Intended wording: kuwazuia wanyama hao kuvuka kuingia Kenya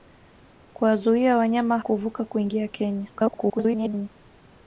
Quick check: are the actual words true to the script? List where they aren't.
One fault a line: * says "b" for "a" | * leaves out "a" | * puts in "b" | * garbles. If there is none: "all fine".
* leaves out "hao"
* garbles